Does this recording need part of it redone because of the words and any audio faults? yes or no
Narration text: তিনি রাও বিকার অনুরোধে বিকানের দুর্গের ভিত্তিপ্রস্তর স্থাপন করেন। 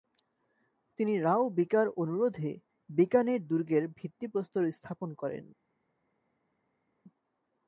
no